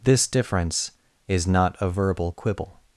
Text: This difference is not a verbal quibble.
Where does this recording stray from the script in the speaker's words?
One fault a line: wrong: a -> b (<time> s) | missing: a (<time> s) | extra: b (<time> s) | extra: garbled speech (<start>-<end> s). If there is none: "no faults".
no faults